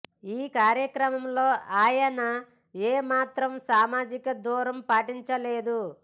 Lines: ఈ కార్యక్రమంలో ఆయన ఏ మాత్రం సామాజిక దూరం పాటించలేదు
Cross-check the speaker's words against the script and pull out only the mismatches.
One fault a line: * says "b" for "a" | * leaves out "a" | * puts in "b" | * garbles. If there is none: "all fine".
all fine